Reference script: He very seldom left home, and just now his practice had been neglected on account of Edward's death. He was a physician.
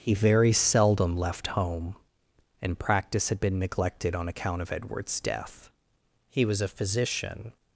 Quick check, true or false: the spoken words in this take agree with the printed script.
false